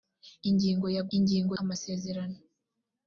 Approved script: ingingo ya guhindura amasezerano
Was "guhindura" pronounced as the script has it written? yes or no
no